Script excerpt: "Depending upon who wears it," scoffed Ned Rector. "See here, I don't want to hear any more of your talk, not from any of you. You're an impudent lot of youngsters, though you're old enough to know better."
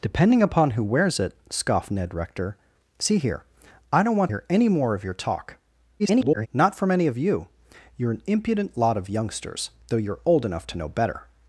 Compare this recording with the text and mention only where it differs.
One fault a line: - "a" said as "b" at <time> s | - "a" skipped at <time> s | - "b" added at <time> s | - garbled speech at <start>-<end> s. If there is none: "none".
- "to" skipped at 4.3 s
- garbled speech at 6.0-6.5 s